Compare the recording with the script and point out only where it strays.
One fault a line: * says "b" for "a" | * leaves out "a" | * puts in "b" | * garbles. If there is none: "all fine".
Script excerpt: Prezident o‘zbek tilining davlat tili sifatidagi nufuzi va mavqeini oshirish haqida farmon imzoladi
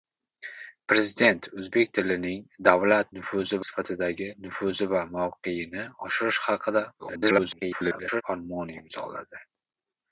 * says "nufuzi" for "tili"
* garbles